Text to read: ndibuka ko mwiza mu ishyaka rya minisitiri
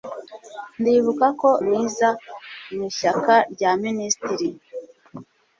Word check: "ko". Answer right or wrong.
right